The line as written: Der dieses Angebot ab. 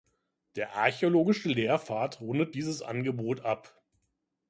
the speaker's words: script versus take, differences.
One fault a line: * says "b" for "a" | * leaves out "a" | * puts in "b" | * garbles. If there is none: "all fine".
* puts in "archäologische Lehrpfad rundet"